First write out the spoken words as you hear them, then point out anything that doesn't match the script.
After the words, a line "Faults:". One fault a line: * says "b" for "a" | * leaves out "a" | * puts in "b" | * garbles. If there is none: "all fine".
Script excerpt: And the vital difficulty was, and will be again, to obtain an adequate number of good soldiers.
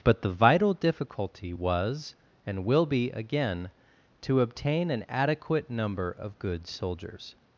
But the vital difficulty was, and will be again, to obtain an adequate number of good soldiers.
Faults:
* says "But" for "And"